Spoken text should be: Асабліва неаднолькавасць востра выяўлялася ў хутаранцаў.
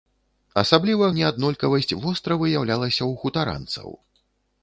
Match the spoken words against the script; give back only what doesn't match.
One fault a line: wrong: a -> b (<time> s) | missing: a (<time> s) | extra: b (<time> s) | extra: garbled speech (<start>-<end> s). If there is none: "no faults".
no faults